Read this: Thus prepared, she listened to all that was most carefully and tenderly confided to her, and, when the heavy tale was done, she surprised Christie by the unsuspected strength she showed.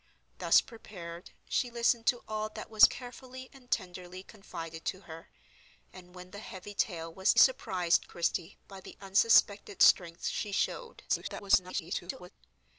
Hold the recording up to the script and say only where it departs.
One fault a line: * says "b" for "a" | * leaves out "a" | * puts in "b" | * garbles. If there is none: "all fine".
* leaves out "most"
* leaves out "done she"
* garbles